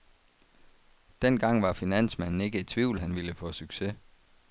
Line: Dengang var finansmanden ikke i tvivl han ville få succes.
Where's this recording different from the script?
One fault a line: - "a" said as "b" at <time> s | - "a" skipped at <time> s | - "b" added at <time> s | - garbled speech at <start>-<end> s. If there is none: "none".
none